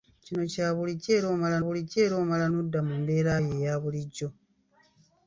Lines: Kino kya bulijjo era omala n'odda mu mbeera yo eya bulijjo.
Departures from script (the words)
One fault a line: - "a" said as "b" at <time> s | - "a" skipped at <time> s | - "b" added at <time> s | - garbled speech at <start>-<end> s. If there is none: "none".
- "bulijjo era omala" added at 1.6 s